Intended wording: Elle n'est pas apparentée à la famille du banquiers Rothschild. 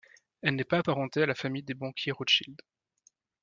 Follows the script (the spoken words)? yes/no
no